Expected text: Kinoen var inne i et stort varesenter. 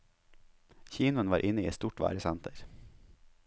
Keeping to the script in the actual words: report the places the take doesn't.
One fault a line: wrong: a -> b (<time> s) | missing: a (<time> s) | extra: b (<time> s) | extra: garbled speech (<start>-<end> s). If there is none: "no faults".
no faults